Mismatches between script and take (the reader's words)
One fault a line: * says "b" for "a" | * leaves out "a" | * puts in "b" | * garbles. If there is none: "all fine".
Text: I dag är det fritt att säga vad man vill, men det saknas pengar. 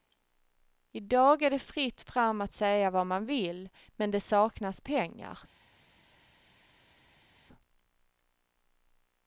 * puts in "fram"